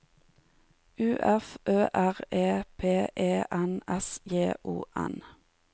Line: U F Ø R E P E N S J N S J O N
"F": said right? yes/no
yes